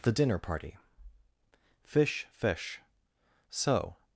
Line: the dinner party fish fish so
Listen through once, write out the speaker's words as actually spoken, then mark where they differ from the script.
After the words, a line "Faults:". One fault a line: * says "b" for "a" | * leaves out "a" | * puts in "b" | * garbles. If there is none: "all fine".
the dinner party fish fish so
Faults:
all fine